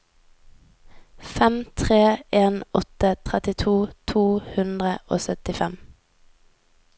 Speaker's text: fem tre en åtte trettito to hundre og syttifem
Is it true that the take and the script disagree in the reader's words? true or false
false